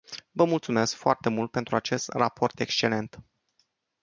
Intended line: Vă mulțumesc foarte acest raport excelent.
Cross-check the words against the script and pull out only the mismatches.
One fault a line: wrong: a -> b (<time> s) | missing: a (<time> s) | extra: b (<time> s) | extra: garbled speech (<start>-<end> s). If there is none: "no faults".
extra: mult pentru (1.3 s)